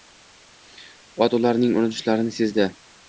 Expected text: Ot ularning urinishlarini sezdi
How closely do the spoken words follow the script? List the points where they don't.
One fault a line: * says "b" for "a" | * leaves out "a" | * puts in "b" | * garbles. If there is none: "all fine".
all fine